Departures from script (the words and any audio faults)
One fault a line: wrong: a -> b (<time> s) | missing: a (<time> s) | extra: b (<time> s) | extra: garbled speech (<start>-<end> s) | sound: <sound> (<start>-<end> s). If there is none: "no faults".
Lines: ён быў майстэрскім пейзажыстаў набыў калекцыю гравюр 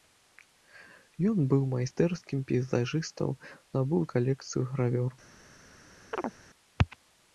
sound: chirp (6.1-6.4 s)